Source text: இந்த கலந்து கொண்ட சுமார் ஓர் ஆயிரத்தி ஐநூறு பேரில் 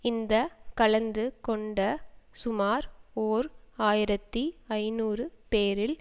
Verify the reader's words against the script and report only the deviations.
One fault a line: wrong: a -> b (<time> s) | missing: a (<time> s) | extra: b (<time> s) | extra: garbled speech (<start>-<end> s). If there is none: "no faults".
no faults